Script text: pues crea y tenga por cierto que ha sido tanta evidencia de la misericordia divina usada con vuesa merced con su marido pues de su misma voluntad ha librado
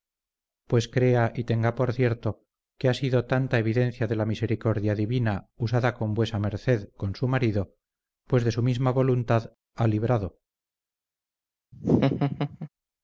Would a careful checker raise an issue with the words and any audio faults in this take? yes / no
yes